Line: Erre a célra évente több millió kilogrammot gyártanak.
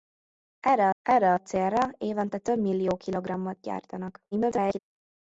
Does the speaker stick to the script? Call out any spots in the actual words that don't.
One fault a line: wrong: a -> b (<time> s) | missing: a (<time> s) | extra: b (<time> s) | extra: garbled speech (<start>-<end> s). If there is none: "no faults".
extra: erre (1.0 s)
extra: garbled speech (4.3-4.8 s)